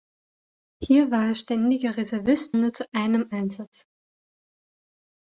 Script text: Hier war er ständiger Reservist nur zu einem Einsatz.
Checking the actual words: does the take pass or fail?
pass